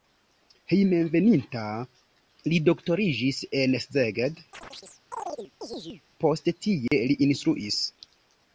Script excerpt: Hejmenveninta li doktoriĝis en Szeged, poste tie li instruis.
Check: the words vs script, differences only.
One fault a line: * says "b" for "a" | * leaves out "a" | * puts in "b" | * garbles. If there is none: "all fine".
all fine